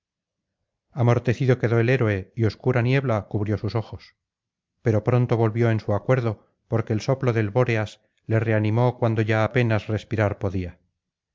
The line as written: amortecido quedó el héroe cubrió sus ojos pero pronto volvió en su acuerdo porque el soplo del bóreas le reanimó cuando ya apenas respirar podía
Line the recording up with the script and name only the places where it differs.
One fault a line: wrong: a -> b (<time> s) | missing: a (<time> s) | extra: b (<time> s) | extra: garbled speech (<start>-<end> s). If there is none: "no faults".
extra: y obscura niebla (2.4 s)